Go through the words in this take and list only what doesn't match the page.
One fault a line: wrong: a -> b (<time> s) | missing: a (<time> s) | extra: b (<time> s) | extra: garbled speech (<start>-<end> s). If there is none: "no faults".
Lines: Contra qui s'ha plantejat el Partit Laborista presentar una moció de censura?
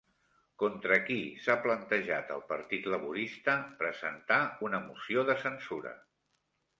no faults